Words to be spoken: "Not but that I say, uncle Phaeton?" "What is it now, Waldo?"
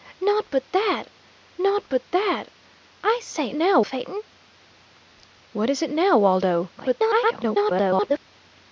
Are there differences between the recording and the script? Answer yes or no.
yes